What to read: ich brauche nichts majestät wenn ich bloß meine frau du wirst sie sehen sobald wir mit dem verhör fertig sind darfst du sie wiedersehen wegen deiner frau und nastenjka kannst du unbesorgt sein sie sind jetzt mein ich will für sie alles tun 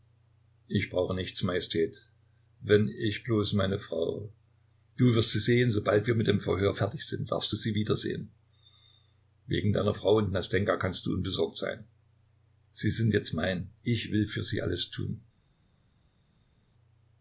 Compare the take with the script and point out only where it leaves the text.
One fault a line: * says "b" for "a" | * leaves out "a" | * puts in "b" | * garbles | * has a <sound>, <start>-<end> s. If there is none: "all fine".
all fine